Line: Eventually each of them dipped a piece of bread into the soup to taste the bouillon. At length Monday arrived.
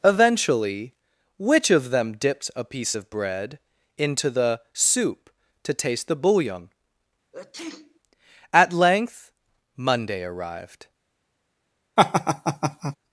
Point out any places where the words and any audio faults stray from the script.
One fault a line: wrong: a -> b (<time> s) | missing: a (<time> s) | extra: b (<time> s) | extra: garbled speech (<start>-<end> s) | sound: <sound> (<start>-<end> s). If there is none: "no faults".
wrong: each -> which (1.4 s)
sound: sneeze (7.3-8.0 s)
sound: laugh (12.0-13.0 s)